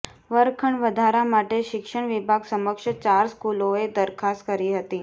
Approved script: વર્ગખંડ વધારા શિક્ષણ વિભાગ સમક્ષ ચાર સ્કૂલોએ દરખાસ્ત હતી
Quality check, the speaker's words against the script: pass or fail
fail